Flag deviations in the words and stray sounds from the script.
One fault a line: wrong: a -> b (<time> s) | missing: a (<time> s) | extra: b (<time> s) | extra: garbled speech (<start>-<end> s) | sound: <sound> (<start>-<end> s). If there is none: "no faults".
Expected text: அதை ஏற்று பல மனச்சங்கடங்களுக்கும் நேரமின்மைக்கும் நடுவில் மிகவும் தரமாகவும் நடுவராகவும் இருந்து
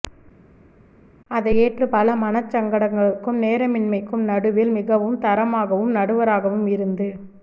no faults